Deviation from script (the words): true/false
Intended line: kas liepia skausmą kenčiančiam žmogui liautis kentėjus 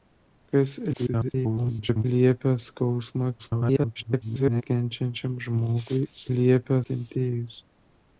true